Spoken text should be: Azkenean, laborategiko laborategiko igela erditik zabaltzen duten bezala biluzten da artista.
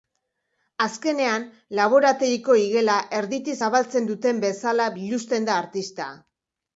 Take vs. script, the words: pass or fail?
fail